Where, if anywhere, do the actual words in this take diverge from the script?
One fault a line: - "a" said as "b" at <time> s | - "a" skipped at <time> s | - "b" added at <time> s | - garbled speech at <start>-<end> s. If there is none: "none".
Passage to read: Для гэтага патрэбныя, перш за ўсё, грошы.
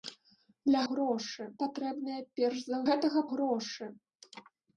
- "гэтага" said as "грошы" at 0.9 s
- "ўсё" said as "гэтага" at 2.9 s